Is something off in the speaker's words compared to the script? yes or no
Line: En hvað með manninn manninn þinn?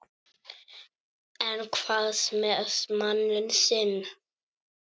yes